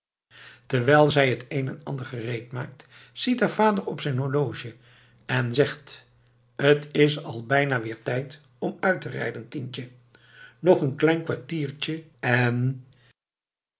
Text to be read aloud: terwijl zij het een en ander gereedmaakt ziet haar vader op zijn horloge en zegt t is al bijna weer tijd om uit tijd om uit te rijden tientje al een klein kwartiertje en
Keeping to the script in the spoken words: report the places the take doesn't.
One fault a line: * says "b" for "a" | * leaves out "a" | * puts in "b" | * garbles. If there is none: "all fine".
* leaves out "tijd om uit"
* says "nog" for "al"